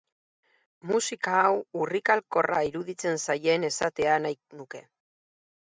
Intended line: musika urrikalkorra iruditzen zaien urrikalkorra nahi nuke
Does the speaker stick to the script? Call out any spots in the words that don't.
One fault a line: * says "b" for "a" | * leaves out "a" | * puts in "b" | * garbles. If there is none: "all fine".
* puts in "hau"
* says "esatea" for "urrikalkorra"